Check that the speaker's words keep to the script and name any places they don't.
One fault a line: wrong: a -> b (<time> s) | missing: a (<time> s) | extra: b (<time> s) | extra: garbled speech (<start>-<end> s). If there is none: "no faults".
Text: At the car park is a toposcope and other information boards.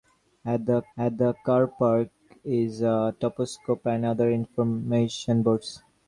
extra: at the (1.0 s)